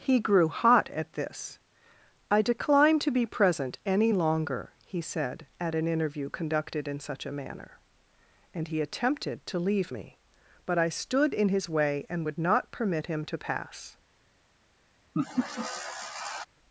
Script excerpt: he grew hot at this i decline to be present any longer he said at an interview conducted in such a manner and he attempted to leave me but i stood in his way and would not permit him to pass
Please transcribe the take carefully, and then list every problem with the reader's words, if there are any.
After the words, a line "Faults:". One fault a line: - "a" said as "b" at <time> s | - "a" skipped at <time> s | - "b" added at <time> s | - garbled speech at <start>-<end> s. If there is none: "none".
he grew hot at this i decline to be present any longer he said at an interview conducted in such a manner and he attempted to leave me but i stood in his way and would not permit him to pass
Faults:
none